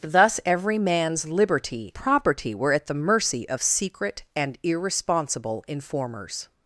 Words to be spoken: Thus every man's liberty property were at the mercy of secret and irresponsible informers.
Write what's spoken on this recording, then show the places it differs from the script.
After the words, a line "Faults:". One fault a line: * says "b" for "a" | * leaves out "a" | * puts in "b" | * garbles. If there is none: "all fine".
Thus every man's liberty property were at the mercy of secret and irresponsible informers.
Faults:
all fine